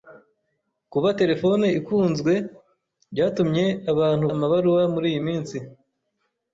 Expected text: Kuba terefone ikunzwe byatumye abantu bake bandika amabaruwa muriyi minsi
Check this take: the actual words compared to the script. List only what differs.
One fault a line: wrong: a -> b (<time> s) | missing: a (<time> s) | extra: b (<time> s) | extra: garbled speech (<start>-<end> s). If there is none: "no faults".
missing: bake bandika (4.2 s)